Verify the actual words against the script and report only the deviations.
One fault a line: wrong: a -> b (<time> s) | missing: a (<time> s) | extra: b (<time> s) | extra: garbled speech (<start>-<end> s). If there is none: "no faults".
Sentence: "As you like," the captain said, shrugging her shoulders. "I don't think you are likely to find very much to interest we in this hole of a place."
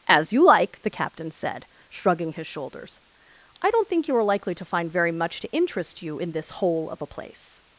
wrong: her -> his (2.3 s)
wrong: we -> you (6.0 s)